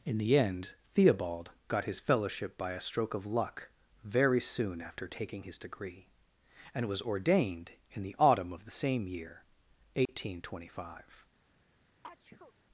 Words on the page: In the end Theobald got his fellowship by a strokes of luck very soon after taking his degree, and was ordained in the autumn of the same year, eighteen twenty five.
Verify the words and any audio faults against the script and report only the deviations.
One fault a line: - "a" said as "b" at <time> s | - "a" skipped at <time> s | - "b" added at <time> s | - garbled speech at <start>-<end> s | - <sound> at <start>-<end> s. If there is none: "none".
- "strokes" said as "stroke" at 2.8 s
- dropout at 10.1-10.1 s
- sneeze at 12.0-12.5 s